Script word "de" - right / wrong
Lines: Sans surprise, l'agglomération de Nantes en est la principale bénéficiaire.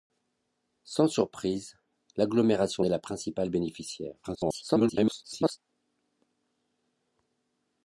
wrong